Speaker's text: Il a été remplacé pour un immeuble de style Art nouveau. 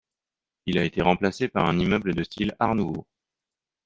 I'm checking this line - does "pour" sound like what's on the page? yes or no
no